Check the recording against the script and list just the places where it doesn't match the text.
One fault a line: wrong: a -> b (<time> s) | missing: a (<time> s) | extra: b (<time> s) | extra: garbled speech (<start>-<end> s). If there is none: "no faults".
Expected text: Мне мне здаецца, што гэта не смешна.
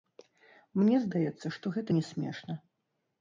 missing: мне (0.9 s)